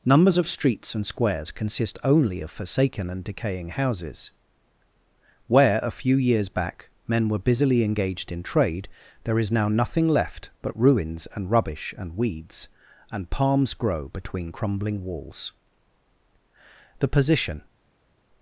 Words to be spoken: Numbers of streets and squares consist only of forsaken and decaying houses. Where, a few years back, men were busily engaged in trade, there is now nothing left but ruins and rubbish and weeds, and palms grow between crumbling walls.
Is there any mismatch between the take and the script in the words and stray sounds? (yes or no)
yes